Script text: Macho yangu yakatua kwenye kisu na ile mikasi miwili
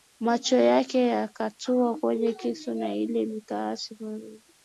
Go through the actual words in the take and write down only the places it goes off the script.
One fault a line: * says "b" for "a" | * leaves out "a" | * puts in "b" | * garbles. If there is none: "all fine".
* says "yake" for "yangu"